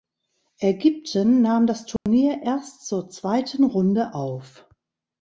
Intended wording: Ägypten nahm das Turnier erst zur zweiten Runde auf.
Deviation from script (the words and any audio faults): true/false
true